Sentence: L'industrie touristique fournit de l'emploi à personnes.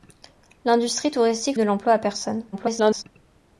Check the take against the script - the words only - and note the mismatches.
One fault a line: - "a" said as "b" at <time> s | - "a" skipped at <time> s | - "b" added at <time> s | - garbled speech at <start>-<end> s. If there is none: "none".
- "fournit" skipped at 1.6 s
- garbled speech at 2.5-3.0 s